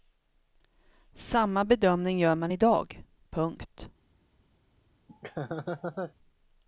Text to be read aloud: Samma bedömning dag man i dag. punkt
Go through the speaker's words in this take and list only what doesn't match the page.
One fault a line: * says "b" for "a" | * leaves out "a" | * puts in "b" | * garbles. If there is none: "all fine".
* says "gör" for "dag"